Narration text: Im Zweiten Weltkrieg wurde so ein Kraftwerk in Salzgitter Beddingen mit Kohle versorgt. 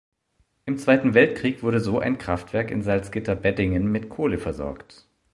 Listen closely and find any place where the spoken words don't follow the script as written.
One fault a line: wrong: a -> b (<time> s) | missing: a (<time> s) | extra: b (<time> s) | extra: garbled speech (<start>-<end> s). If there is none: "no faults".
no faults